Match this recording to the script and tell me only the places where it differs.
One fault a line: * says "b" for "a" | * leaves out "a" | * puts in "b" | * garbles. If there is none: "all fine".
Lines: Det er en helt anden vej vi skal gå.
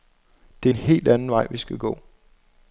all fine